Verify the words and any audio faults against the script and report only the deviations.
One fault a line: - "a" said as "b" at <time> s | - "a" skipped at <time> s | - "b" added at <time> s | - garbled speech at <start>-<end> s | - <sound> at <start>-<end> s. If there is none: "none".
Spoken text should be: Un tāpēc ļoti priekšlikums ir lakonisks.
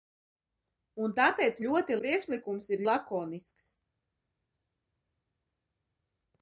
none